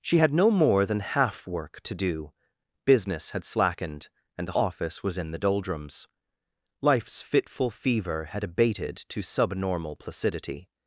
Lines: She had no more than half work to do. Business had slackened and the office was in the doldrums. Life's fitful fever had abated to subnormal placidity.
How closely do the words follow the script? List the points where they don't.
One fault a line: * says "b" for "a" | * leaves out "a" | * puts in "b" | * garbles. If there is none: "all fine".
all fine